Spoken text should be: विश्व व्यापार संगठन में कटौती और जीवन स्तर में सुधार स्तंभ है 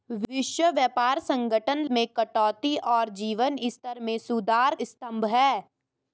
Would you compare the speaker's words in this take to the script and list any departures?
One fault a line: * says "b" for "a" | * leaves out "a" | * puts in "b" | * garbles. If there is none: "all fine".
all fine